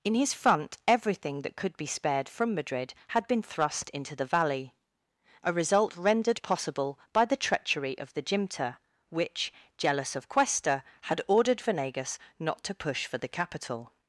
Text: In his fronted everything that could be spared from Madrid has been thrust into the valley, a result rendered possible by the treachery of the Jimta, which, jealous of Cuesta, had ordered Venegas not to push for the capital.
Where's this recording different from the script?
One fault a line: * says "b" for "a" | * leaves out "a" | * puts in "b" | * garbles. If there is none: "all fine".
* says "front" for "fronted"
* says "had" for "has"